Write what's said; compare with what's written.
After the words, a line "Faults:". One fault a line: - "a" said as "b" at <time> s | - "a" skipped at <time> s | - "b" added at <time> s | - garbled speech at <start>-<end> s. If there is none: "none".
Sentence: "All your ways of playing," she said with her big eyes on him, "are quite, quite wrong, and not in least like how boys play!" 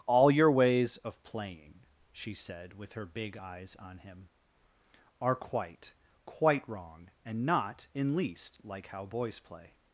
"All your ways of playing," she said with her big eyes on him, "are quite, quite wrong, and not in least like how boys play!"
Faults:
none